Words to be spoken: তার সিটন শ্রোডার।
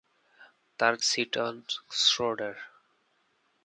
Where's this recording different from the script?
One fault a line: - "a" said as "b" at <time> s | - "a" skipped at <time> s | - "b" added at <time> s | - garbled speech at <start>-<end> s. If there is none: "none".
none